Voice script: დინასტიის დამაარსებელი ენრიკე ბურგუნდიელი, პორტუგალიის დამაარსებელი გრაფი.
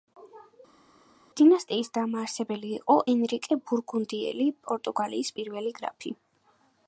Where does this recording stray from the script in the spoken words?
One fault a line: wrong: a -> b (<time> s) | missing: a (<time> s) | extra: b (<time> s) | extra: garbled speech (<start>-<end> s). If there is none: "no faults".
extra: იყო (2.8 s)
wrong: დამაარსებელი -> პირველი (5.4 s)